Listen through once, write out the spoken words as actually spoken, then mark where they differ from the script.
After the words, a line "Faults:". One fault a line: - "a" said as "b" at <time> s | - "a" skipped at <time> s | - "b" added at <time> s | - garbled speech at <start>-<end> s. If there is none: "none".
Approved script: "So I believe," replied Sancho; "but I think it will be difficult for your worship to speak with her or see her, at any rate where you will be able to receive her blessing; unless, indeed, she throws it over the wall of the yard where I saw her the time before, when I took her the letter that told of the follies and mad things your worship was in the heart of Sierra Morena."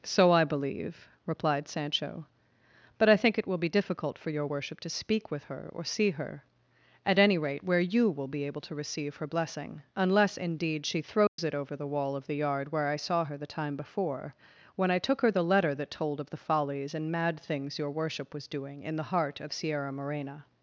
"So I believe," replied Sancho; "but I think it will be difficult for your worship to speak with her or see her, at any rate where you will be able to receive her blessing; unless, indeed, she throws it over the wall of the yard where I saw her the time before, when I took her the letter that told of the follies and mad things your worship was doing in the heart of Sierra Morena."
Faults:
- "doing" added at 18.5 s